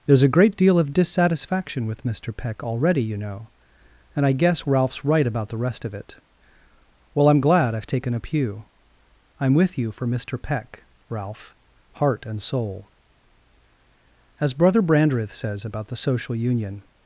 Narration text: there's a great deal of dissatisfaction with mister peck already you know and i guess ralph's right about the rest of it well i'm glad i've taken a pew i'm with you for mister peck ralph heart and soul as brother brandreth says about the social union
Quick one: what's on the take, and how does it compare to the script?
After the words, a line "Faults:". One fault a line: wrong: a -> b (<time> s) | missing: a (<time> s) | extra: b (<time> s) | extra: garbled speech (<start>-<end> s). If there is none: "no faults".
there's a great deal of dissatisfaction with mister peck already you know and i guess ralph's right about the rest of it well i'm glad i've taken a pew i'm with you for mister peck ralph heart and soul as brother brandreth says about the social union
Faults:
no faults